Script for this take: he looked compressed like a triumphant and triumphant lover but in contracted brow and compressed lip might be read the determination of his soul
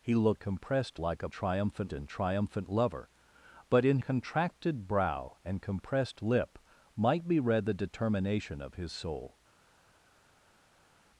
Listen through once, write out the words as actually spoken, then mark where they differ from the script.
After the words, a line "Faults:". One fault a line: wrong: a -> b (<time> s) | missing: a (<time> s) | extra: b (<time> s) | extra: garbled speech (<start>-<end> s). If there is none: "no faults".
he looked compressed like a triumphant and triumphant lover but in contracted brow and compressed lip might be read the determination of his soul
Faults:
no faults